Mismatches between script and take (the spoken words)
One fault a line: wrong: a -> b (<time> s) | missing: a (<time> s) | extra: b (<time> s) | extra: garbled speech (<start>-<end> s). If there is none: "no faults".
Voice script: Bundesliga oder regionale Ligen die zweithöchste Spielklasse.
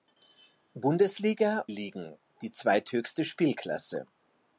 missing: oder regionale (1.7 s)